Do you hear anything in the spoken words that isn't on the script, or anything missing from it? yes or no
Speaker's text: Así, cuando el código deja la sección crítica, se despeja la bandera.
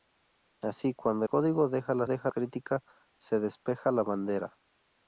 yes